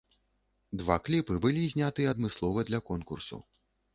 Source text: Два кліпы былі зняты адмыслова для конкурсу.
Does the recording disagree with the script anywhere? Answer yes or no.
no